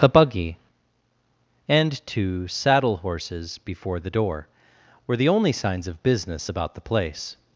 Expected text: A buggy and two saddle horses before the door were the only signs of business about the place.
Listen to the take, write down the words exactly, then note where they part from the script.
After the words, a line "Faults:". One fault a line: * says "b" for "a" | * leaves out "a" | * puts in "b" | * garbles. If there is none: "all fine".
A buggy and two saddle horses before the door were the only signs of business about the place.
Faults:
all fine